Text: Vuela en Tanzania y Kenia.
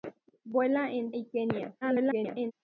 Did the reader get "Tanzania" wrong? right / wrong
wrong